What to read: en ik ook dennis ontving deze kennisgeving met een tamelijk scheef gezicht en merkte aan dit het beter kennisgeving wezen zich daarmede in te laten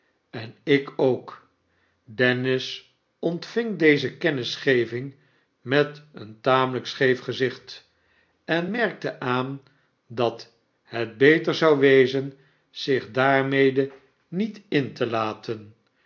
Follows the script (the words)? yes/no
no